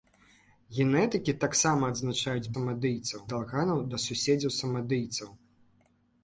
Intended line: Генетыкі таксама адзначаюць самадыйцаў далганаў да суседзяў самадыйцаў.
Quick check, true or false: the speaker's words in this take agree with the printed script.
true